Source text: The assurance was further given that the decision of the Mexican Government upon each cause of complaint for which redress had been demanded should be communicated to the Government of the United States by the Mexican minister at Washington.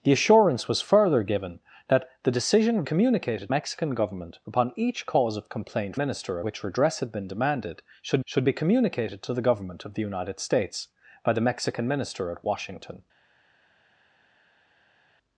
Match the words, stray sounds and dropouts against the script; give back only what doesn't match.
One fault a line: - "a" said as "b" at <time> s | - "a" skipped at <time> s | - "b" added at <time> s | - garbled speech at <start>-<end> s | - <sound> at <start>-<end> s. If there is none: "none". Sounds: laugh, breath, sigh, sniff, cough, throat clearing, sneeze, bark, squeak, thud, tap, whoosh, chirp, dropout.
- "the" said as "communicated" at 2.8 s
- "for" said as "minister" at 6.0 s
- "should" added at 8.2 s